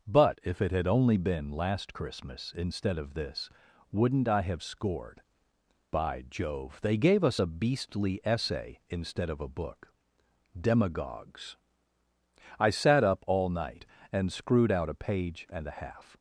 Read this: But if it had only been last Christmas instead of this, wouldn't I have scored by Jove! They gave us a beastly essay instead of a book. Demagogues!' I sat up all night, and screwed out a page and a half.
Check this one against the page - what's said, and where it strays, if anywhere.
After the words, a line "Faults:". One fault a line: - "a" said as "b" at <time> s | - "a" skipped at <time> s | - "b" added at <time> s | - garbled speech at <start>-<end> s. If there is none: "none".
But if it had only been last Christmas instead of this, wouldn't I have scored by Jove! They gave us a beastly essay instead of a book. Demagogues!' I sat up all night, and screwed out a page and a half.
Faults:
none